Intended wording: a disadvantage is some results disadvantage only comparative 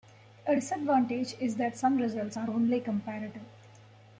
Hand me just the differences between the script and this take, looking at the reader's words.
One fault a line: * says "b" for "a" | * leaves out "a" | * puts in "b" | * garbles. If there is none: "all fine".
* puts in "that"
* says "are" for "disadvantage"